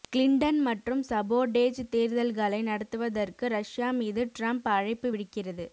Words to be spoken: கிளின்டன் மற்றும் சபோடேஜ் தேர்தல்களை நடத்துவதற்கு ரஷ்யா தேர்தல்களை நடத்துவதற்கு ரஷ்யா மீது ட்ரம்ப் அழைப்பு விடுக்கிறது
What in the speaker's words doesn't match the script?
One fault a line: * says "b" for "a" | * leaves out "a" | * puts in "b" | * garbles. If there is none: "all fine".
* leaves out "தேர்தல்களை நடத்துவதற்கு ரஷ்யா"